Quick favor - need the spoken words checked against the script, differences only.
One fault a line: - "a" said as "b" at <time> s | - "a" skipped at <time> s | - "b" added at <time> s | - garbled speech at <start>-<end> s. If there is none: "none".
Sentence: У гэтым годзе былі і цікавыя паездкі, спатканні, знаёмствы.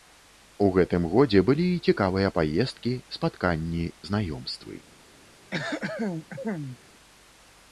none